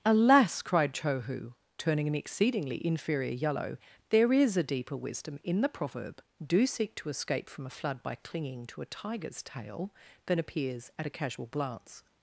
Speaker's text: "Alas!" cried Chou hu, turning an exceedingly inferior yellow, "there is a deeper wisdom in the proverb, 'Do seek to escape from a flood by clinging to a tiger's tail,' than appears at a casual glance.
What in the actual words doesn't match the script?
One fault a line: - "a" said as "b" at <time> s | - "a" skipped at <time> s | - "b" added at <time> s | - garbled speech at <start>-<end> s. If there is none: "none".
none